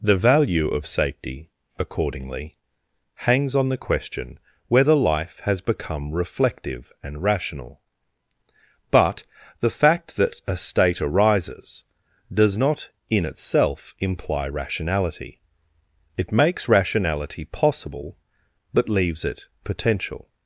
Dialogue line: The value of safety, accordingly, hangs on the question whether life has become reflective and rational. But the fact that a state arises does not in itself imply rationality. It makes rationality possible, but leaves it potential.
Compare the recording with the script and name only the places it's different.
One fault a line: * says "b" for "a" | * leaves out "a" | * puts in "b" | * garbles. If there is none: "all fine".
all fine